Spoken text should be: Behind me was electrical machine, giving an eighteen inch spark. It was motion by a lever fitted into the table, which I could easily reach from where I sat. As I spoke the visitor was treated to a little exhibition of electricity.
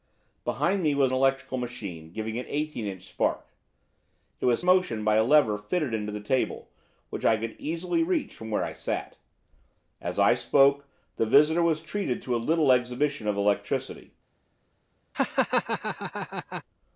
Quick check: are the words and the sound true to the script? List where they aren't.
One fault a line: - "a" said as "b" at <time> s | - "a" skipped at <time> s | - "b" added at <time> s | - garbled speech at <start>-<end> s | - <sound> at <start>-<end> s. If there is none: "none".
- laugh at 15.1-16.6 s